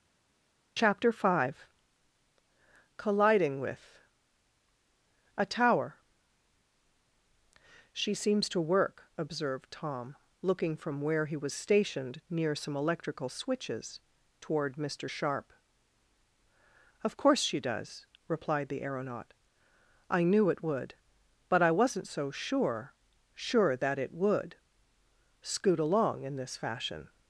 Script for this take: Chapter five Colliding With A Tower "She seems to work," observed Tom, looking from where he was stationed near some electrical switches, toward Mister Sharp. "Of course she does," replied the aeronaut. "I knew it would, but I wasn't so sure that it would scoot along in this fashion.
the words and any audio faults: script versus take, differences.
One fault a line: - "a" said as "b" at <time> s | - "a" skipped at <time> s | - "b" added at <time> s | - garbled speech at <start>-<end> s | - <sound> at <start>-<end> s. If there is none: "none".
- "sure" added at 23.3 s